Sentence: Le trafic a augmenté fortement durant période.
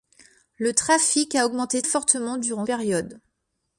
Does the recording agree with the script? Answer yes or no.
yes